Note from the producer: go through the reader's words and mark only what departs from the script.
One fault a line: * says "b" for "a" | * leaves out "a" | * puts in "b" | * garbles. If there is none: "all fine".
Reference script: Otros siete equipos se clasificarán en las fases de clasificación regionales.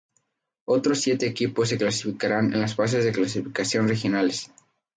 all fine